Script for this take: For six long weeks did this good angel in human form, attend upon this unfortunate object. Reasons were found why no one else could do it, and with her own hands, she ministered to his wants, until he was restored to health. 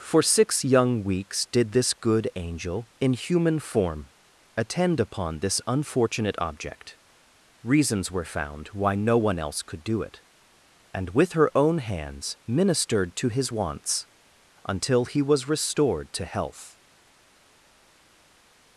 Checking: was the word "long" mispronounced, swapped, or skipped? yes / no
yes